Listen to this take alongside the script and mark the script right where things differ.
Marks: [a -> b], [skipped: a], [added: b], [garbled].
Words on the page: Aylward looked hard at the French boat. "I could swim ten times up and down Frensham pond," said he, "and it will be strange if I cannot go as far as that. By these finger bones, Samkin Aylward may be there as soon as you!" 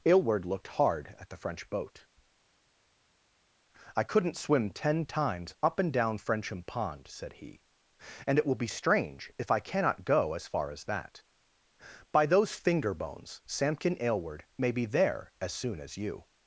Aylward looked hard at the French boat. "I [could -> couldn't] swim ten times up and down Frensham pond," said he, "and it will be strange if I cannot go as far as that. By [these -> those] finger bones, Samkin Aylward may be there as soon as you!"